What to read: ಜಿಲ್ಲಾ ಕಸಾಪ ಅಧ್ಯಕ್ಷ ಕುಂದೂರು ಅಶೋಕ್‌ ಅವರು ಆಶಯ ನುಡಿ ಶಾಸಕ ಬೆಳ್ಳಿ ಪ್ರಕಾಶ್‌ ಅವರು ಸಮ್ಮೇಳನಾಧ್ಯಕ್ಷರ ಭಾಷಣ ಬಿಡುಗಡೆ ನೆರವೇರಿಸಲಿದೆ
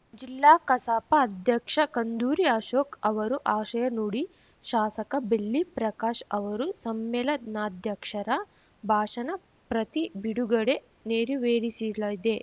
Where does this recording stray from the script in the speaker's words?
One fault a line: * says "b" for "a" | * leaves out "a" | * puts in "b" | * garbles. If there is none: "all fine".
* puts in "ಪ್ರತಿ"